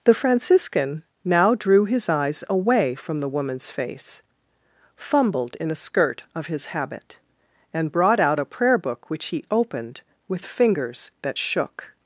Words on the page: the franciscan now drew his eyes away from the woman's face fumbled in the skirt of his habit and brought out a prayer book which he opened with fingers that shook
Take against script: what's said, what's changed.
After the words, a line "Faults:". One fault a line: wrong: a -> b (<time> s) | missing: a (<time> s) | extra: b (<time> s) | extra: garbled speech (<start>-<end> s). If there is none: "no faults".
the franciscan now drew his eyes away from the woman's face fumbled in a skirt of his habit and brought out a prayer book which he opened with fingers that shook
Faults:
wrong: the -> a (5.7 s)